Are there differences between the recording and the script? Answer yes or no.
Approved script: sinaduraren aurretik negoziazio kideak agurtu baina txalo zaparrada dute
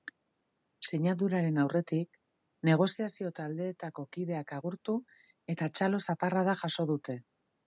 yes